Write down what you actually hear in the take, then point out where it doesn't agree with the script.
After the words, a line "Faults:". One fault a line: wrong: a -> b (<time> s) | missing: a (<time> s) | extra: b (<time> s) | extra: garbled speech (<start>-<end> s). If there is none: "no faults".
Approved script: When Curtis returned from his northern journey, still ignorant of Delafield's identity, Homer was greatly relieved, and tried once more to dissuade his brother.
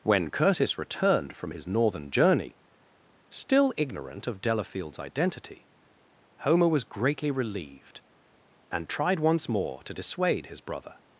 When Curtis returned from his northern journey, still ignorant of Delafield's identity, Homer was greatly relieved, and tried once more to dissuade his brother.
Faults:
no faults